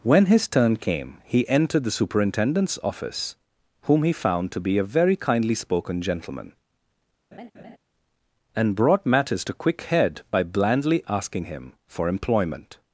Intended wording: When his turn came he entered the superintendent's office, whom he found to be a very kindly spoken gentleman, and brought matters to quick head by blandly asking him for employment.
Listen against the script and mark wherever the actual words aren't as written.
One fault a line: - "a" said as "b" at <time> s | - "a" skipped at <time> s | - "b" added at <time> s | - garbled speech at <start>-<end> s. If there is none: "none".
none